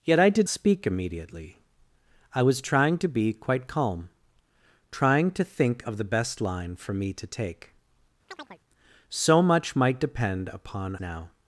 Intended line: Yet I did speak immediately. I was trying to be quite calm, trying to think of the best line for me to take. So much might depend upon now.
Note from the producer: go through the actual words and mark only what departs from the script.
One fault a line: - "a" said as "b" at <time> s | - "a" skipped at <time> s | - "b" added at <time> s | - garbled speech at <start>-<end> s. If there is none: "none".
none